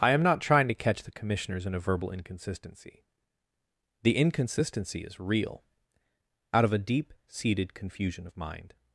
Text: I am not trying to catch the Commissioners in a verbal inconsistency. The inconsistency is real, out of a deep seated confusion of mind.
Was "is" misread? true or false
false